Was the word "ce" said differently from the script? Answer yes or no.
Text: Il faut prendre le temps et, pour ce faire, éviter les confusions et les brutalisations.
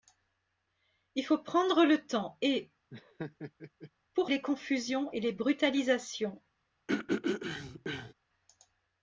yes